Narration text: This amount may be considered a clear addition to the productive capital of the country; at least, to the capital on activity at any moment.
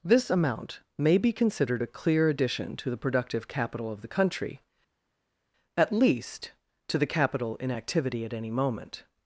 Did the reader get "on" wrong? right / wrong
wrong